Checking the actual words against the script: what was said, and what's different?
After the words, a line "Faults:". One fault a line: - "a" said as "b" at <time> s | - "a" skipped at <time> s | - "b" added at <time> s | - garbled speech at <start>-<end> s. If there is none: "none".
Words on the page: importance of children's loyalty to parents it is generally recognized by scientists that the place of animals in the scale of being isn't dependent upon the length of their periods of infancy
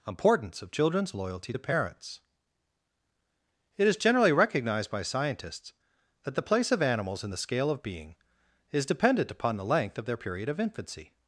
importance of children's loyalty to parents it is generally recognized by scientists that the place of animals in the scale of being is dependent upon the length of their period of infancy
Faults:
- "isn't" said as "is" at 8.7 s
- "periods" said as "period" at 10.2 s